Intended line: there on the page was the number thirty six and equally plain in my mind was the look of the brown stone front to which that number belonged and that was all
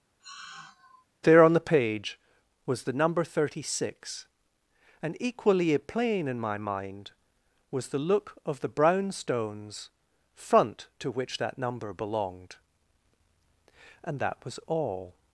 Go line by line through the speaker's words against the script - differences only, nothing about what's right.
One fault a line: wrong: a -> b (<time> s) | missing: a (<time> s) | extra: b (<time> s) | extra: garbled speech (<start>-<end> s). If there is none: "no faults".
wrong: stone -> stones (9.1 s)